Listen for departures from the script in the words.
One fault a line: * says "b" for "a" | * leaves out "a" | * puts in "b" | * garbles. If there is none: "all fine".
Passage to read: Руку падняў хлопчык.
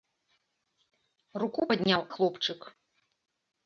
all fine